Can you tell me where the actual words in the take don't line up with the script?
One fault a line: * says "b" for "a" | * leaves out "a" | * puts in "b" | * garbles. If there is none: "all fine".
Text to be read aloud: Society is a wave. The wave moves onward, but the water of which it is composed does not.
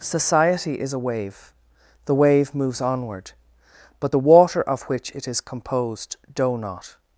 * says "doe" for "does"